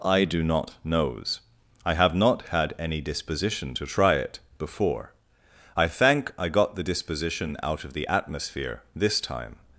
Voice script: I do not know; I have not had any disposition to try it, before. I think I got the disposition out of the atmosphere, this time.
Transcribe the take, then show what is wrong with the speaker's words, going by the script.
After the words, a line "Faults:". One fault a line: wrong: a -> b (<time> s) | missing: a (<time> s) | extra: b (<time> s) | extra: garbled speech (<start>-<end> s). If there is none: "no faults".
I do not knows; I have not had any disposition to try it, before. I thank I got the disposition out of the atmosphere, this time.
Faults:
wrong: know -> knows (0.8 s)
wrong: think -> thank (5.9 s)